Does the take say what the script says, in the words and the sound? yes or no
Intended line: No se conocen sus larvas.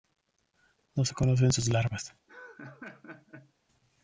no